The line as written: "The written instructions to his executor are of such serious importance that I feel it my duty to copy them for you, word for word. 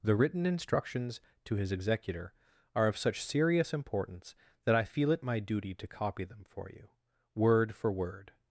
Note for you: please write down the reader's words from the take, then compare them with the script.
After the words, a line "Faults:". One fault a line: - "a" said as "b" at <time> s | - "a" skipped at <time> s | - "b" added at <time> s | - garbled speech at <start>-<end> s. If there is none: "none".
"The written instructions to his executor are of such serious importance that I feel it my duty to copy them for you, word for word.
Faults:
none